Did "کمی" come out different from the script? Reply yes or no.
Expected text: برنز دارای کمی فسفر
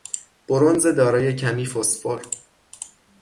no